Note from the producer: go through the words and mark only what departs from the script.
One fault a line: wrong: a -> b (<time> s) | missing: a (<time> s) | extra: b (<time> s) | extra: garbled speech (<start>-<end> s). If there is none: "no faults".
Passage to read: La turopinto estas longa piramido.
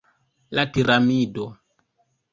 missing: turopinto estas longa (0.6 s)